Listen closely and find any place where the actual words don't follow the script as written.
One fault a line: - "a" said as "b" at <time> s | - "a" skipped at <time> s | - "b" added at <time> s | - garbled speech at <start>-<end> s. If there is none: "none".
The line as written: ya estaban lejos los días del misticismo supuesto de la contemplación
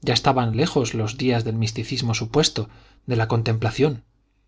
none